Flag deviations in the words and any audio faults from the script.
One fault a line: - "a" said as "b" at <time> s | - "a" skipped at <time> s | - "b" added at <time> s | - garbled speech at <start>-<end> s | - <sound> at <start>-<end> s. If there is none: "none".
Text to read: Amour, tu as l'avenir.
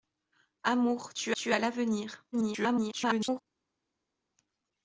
- "tu" added at 1.3 s
- garbled speech at 2.3-3.4 s